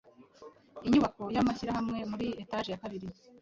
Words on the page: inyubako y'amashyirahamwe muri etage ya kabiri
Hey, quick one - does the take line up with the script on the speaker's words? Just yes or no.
yes